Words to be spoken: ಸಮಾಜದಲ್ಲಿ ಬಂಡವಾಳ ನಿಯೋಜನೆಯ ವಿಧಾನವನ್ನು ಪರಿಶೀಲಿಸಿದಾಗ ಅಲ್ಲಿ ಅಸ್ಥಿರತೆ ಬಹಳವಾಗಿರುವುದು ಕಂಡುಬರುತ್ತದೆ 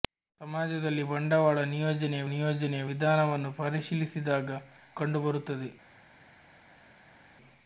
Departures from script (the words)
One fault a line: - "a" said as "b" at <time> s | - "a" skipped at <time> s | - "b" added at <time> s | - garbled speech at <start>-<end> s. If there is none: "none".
- "ನಿಯೋಜನೆಯ" added at 2.3 s
- "ಅಲ್ಲಿ ಅಸ್ಥಿರತೆ ಬಹಳವಾಗಿರುವುದು" skipped at 4.6 s